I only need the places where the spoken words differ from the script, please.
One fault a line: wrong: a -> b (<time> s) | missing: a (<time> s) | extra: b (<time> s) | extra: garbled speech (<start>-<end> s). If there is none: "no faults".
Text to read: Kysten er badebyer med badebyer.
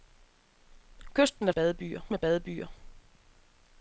no faults